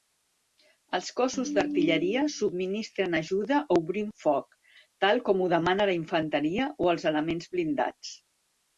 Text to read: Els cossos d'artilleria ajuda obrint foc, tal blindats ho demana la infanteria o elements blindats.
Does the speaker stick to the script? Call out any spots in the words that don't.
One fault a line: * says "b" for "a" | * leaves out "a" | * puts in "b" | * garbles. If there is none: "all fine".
* puts in "subministren"
* says "com" for "blindats"
* puts in "els"